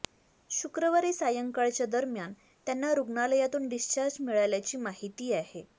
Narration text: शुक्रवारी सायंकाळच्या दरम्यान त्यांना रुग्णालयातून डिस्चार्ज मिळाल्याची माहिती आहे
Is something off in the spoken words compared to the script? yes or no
no